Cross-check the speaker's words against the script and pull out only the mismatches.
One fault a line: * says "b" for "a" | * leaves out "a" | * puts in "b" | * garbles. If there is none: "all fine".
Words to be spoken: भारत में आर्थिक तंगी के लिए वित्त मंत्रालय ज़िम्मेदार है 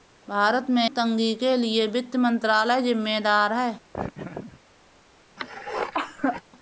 * leaves out "आर्थिक"